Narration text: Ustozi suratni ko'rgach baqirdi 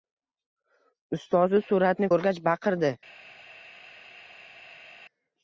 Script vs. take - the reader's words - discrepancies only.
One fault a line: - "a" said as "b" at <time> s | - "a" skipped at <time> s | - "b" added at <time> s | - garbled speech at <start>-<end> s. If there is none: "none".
none